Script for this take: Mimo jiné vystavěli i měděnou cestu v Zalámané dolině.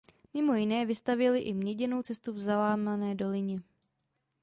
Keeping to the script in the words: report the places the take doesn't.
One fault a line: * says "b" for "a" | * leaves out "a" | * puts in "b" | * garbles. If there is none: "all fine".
all fine